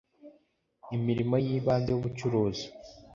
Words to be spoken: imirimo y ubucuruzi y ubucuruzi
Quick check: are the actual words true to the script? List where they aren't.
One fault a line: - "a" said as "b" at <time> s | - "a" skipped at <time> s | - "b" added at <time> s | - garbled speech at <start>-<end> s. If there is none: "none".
- "ubucuruzi" said as "ibanze" at 1.6 s